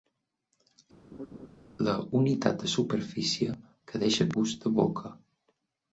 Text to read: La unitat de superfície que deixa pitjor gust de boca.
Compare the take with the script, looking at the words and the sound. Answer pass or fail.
fail